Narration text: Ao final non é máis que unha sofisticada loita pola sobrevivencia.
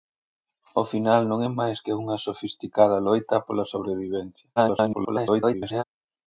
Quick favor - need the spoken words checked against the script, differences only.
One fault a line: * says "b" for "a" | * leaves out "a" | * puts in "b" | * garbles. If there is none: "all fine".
* garbles